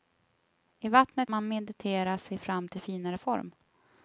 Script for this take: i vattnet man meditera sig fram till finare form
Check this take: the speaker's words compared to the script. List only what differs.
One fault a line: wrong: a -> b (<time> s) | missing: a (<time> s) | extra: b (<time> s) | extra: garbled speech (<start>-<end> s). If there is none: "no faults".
no faults